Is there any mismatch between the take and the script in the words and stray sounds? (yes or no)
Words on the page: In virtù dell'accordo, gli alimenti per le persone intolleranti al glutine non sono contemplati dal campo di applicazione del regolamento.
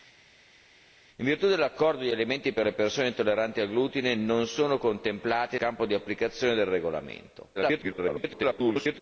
yes